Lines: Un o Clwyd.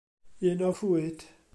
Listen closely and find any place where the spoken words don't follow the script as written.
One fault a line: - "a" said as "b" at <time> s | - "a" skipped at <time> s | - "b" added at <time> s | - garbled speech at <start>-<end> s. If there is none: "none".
none